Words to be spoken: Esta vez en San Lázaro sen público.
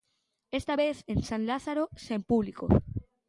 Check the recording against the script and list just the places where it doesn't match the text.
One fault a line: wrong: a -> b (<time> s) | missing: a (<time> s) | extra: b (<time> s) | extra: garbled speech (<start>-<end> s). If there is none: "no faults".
no faults